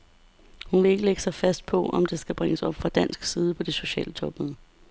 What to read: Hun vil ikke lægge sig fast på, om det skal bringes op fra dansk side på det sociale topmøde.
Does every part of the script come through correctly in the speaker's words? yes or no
yes